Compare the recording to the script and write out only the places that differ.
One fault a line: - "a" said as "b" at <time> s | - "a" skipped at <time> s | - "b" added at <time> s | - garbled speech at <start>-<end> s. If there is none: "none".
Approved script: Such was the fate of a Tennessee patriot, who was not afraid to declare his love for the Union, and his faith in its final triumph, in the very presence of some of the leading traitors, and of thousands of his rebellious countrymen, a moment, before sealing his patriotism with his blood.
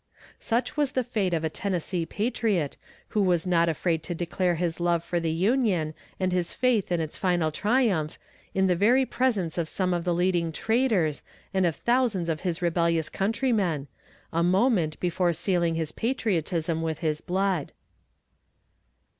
none